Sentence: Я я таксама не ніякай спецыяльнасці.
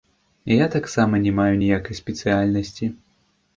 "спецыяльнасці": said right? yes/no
yes